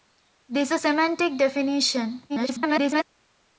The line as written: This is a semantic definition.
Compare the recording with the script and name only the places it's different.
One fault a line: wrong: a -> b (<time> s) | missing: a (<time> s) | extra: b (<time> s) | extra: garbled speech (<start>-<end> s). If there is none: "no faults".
missing: is (0.7 s)
extra: garbled speech (2.3-3.0 s)